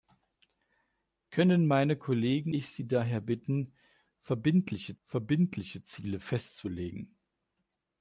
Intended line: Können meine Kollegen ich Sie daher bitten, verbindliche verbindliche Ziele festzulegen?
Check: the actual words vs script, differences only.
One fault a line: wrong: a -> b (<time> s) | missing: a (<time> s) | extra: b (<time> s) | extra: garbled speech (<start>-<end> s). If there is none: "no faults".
no faults